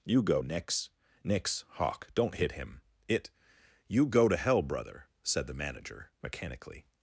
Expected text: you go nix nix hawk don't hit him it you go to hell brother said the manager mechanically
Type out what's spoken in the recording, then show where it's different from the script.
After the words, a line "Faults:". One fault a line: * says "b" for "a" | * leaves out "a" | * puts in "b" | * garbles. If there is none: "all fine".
you go nix nix hawk don't hit him it you go to hell brother said the manager mechanically
Faults:
all fine